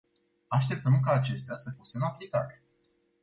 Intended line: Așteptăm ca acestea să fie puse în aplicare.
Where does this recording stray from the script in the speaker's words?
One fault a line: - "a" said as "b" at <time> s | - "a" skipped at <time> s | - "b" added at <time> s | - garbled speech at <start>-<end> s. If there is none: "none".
- "fie" skipped at 1.7 s